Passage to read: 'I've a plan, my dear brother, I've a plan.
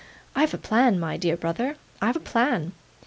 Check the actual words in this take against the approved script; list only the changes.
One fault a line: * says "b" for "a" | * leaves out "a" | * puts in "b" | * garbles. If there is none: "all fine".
all fine